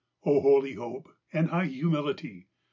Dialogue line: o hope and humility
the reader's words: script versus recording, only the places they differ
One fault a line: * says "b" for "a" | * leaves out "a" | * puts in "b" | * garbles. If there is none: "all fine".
* puts in "holy"
* puts in "high"